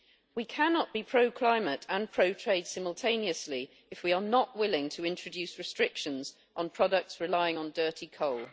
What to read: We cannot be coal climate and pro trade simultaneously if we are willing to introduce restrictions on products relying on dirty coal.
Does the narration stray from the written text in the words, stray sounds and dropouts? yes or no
yes